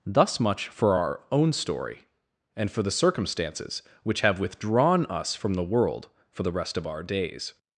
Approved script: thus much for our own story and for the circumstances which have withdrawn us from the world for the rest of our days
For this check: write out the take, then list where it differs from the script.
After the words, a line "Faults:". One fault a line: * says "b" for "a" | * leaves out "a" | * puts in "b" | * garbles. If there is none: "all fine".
thus much for our own story and for the circumstances which have withdrawn us from the world for the rest of our days
Faults:
all fine